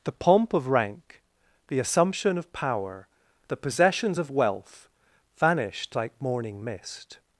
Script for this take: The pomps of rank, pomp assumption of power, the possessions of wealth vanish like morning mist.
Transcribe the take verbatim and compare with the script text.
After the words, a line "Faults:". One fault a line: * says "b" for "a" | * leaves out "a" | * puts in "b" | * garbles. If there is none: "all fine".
The pomp of rank, the assumption of power, the possessions of wealth vanished like morning mist.
Faults:
* says "pomp" for "pomps"
* says "the" for "pomp"
* says "vanished" for "vanish"